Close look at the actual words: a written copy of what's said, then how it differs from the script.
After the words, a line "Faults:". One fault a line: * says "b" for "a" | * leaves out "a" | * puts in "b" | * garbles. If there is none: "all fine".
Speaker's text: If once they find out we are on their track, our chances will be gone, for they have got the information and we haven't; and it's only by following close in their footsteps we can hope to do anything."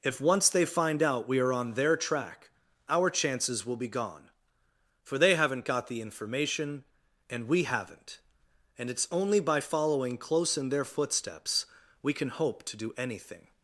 If once they find out we are on their track, our chances will be gone, for they haven't got the information and we haven't; and it's only by following close in their footsteps we can hope to do anything."
Faults:
* says "haven't" for "have"